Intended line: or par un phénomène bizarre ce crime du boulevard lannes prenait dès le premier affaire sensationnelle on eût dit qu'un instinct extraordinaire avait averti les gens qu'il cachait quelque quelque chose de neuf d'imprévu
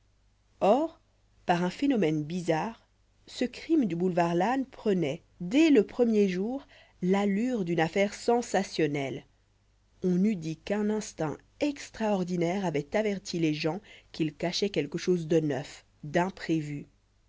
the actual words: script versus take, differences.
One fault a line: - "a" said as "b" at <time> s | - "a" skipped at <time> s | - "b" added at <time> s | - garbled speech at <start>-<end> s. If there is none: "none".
- "jour l'allure d'une" added at 6.3 s
- "quelque" skipped at 15.0 s